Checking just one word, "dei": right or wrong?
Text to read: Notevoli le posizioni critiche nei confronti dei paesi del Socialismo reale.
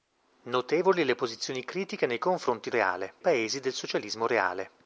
wrong